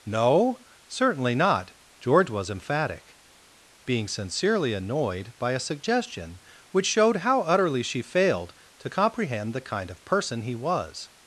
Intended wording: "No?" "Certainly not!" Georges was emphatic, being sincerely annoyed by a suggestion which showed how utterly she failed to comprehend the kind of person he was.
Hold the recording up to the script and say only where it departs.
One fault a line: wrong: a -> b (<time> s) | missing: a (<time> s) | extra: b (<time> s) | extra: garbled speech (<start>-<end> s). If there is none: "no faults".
wrong: Georges -> George (2.0 s)